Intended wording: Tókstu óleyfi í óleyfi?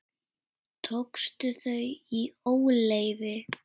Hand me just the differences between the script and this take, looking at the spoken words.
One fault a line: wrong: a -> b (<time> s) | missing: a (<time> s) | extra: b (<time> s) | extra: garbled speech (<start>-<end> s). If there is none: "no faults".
wrong: óleyfi -> þau (1.6 s)